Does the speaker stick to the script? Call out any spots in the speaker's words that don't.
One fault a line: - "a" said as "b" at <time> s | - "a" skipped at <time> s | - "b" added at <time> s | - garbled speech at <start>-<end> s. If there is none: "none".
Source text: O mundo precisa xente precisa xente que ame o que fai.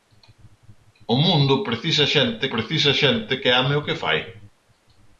none